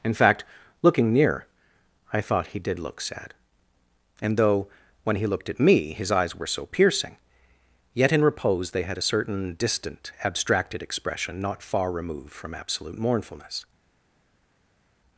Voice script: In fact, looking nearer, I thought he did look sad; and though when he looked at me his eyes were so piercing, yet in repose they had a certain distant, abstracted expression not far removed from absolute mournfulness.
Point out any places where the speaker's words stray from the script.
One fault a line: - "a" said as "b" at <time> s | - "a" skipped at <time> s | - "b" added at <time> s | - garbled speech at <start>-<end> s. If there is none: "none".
- "nearer" said as "near" at 1.1 s